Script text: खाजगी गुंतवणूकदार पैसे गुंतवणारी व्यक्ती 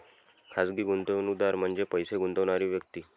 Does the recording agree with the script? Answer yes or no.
no